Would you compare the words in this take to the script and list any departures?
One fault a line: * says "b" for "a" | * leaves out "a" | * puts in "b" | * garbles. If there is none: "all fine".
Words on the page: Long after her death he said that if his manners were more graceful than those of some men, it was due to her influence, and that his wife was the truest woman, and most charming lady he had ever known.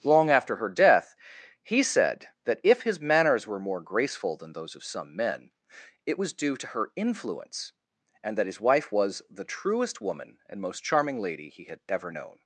all fine